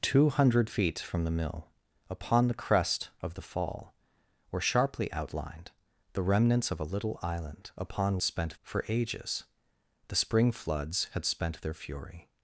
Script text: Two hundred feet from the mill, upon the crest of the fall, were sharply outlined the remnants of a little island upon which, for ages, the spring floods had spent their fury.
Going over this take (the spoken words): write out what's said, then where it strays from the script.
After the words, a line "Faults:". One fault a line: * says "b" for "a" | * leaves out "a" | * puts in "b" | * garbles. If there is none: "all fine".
Two hundred feet from the mill, upon the crest of the fall, were sharply outlined the remnants of a little island upon spent, for ages, the spring floods had spent their fury.
Faults:
* says "spent" for "which"